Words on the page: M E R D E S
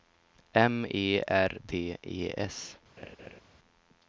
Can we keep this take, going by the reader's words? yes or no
yes